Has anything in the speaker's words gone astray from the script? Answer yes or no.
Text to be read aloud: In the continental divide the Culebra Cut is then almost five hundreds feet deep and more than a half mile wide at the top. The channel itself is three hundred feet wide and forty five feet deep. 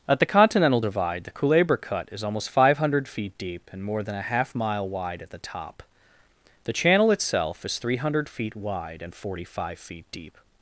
yes